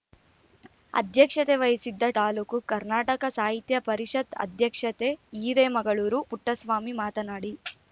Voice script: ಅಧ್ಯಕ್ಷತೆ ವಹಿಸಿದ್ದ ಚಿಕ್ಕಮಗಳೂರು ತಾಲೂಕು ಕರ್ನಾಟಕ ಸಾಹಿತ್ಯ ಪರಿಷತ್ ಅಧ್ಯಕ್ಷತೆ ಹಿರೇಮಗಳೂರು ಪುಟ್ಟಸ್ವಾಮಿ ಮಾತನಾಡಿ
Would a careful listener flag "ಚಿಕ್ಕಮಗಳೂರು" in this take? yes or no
yes